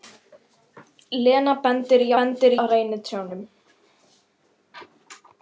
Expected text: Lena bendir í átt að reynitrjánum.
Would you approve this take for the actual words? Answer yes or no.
no